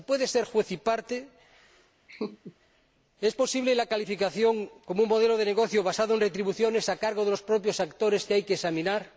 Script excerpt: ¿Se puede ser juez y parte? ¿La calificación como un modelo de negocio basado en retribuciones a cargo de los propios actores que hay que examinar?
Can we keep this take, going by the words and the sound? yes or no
no